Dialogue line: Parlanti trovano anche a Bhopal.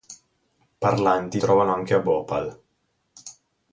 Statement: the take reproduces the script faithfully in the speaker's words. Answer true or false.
true